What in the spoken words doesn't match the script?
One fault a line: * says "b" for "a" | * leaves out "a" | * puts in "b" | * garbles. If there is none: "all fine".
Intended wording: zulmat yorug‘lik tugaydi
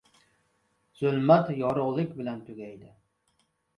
* puts in "bilan"